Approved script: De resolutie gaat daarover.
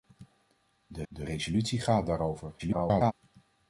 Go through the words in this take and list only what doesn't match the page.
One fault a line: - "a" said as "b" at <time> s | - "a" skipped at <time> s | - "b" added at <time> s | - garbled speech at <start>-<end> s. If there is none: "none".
- "de" added at 1.1 s
- garbled speech at 2.6-3.1 s